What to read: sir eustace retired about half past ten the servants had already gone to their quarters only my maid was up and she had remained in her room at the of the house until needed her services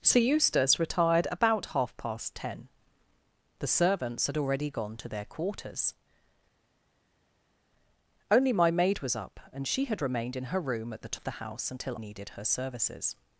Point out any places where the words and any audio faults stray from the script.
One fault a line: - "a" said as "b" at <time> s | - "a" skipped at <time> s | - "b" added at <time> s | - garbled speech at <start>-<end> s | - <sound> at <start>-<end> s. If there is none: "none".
none